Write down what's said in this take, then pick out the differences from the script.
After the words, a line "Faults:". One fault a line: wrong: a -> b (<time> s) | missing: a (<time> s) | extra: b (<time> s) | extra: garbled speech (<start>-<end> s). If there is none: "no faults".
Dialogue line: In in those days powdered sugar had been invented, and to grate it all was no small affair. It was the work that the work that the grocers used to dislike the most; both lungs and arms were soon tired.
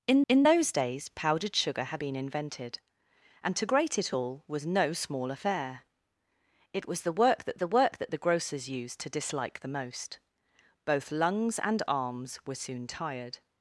In in those days powdered sugar had been invented, and to grate it all was no small affair. It was the work that the work that the grocers used to dislike the most; both lungs and arms were soon tired.
Faults:
no faults